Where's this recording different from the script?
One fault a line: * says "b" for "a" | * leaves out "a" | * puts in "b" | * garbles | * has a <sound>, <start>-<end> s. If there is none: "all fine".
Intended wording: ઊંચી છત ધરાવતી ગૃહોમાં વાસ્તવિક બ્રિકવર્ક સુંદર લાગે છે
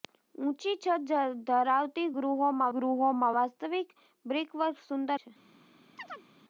* puts in "ગૃહોમાં"
* leaves out "લાગે"
* has a chirp, 6.0-6.3 s